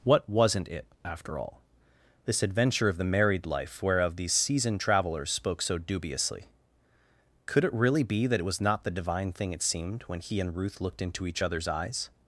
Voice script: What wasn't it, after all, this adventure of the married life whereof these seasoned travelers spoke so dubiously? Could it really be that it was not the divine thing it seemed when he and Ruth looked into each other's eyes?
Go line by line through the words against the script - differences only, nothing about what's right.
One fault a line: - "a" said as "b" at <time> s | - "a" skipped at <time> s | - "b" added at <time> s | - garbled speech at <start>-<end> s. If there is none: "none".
none